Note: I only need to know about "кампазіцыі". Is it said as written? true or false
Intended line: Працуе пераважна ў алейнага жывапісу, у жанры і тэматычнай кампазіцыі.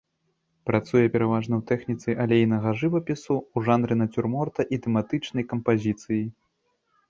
true